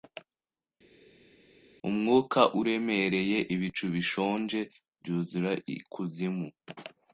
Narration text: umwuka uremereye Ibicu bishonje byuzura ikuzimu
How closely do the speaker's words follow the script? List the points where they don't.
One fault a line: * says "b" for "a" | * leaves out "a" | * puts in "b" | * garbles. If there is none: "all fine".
all fine